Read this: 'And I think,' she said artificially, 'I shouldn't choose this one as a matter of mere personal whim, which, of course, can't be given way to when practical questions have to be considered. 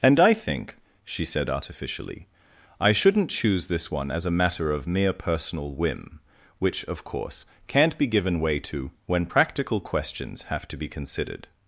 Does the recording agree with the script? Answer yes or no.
yes